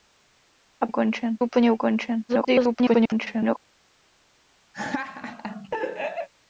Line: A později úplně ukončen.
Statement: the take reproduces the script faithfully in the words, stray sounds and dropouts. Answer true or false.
false